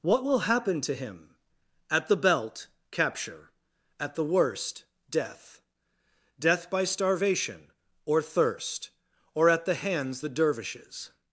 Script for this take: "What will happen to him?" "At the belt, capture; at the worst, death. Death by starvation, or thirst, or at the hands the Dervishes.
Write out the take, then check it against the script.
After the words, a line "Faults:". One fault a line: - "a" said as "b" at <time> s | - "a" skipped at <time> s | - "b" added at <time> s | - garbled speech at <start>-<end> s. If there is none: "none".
"What will happen to him?" "At the belt, capture; at the worst, death. Death by starvation, or thirst, or at the hands the Dervishes.
Faults:
none